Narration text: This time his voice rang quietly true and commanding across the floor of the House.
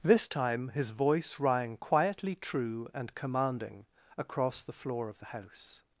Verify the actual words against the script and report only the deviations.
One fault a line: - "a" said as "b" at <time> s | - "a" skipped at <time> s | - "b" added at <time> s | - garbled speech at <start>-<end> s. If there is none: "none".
none